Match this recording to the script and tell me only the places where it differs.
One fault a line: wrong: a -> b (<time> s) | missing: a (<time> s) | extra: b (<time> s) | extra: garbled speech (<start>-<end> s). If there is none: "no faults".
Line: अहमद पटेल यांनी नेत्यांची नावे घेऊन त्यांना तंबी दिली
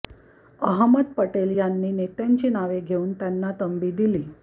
no faults